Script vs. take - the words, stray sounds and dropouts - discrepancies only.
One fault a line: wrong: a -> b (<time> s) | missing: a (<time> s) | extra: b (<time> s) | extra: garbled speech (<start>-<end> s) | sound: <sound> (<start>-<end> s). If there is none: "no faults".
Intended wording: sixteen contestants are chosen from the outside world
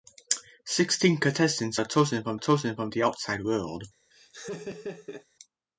extra: chosen from (2.3 s)
sound: laugh (4.1-5.3 s)